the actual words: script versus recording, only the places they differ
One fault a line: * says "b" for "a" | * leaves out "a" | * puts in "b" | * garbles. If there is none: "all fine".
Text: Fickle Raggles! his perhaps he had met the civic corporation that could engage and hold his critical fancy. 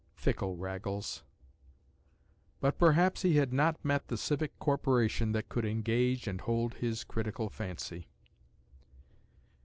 * says "but" for "his"
* puts in "not"